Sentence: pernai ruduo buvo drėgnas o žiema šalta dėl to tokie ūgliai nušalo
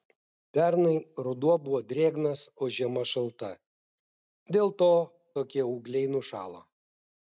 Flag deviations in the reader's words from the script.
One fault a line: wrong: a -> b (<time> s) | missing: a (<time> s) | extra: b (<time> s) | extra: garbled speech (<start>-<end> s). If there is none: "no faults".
no faults